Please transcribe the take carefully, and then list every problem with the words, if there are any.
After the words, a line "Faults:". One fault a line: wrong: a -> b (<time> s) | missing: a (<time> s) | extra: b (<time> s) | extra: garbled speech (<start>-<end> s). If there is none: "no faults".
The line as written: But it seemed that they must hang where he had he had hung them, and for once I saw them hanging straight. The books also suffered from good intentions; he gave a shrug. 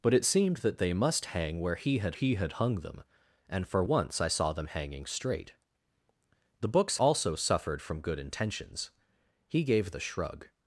But it seemed that they must hang where he had he had hung them, and for once I saw them hanging straight. The books also suffered from good intentions; he gave a shrug.
Faults:
no faults